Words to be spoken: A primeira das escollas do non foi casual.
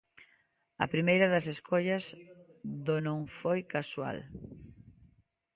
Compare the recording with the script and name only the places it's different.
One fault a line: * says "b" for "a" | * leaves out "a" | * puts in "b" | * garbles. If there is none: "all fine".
all fine